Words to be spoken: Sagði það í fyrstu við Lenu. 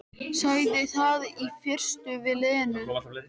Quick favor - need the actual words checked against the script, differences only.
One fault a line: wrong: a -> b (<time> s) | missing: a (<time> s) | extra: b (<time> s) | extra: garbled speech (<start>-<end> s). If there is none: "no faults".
no faults